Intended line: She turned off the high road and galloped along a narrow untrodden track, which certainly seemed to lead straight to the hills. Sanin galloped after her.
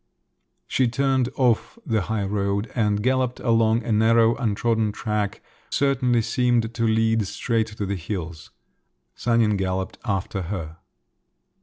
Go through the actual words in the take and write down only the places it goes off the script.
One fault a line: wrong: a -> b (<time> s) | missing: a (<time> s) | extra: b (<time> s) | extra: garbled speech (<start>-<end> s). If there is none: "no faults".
missing: which (5.4 s)